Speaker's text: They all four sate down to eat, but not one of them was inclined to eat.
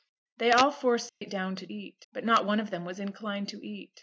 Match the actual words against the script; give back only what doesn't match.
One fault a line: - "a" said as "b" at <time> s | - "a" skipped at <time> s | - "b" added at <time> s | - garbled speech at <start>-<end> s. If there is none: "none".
none